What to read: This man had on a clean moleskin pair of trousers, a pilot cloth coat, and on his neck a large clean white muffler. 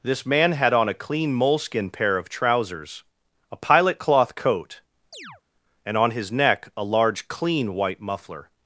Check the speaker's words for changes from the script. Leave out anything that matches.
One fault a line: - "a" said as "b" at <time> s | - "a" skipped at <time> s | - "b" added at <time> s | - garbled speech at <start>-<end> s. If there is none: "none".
none